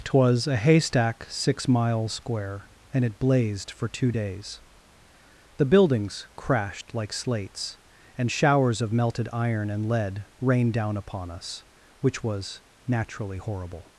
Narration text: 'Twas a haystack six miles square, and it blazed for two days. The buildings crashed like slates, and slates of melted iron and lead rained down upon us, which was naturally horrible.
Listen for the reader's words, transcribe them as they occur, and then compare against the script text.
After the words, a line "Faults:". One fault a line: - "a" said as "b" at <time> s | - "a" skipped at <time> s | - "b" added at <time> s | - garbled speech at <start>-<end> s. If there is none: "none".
'Twas a haystack six miles square, and it blazed for two days. The buildings crashed like slates, and showers of melted iron and lead rained down upon us, which was naturally horrible.
Faults:
- "slates" said as "showers" at 8.3 s